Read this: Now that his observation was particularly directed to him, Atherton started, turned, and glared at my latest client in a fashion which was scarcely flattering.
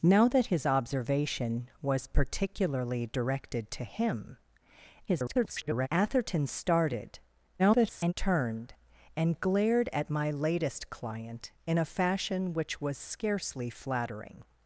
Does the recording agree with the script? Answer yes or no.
no